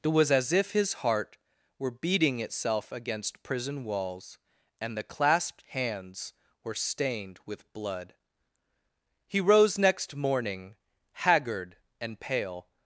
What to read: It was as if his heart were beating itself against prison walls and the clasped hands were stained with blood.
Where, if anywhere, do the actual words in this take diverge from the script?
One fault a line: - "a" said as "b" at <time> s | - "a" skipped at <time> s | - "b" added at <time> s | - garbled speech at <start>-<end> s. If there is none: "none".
- "He rose next morning haggard and pale" added at 9.3 s